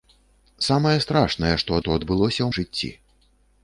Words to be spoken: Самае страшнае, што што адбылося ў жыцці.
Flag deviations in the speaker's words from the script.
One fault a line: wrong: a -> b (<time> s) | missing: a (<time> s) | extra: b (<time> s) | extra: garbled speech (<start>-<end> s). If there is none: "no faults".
no faults